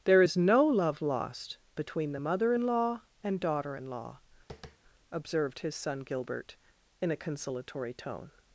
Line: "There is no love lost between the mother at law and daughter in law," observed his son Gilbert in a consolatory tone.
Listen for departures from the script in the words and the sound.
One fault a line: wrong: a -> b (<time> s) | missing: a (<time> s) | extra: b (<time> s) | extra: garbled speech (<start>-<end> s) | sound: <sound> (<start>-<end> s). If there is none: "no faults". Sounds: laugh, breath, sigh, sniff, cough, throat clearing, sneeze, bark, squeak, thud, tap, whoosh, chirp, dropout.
wrong: at -> in (2.5 s)
sound: tap (4.5-4.8 s)